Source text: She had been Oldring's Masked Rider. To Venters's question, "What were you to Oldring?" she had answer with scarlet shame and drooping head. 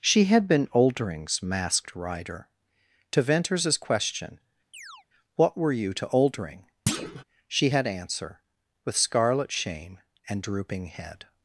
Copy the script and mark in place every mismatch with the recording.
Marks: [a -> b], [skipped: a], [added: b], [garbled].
She had been Oldring's Masked Rider. To Venters's question, "What were you to Oldring?" she had answer with scarlet shame and drooping head.